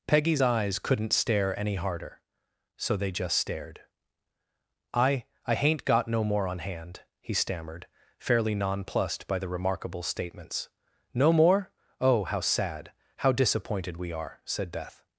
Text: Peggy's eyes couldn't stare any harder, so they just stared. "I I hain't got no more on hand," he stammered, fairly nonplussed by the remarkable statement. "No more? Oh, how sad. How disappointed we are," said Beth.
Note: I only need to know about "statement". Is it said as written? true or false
false